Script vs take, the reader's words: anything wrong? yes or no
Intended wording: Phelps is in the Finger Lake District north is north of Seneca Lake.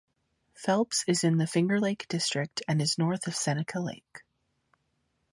yes